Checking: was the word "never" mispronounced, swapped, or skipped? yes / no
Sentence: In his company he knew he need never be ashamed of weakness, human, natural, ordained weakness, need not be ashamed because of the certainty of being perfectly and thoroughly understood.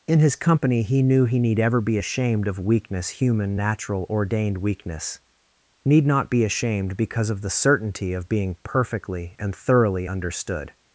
yes